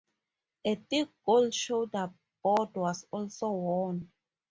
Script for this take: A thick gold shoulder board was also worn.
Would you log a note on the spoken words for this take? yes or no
no